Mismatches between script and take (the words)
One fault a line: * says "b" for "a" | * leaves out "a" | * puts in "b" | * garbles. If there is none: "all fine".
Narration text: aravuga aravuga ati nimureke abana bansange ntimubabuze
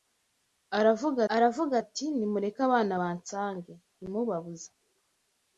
all fine